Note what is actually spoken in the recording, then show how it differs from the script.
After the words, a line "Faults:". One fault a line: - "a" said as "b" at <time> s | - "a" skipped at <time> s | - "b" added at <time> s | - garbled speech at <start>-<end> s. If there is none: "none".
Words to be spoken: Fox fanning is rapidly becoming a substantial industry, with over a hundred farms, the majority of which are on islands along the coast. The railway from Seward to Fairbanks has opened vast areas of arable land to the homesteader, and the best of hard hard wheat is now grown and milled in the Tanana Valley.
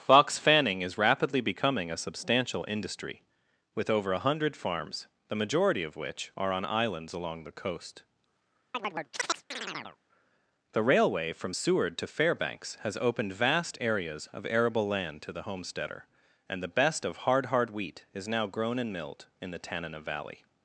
Fox fanning is rapidly becoming a substantial industry, with over a hundred farms, the majority of which are on islands along the coast. The railway from Seward to Fairbanks has opened vast areas of arable land to the homesteader, and the best of hard hard wheat is now grown and milled in the Tanana Valley.
Faults:
none